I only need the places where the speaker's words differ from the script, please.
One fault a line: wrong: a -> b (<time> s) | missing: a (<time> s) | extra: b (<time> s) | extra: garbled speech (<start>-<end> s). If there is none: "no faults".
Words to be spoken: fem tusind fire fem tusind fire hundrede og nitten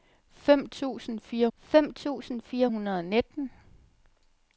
no faults